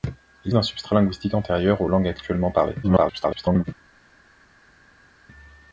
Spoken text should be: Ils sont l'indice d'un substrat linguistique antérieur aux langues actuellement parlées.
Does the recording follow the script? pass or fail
fail